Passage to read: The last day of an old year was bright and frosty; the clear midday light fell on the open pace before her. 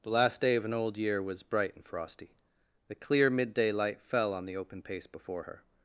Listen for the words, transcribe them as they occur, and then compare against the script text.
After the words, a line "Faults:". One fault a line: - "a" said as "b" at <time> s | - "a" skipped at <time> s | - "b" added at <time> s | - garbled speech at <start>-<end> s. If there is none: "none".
The last day of an old year was bright and frosty; the clear midday light fell on the open pace before her.
Faults:
none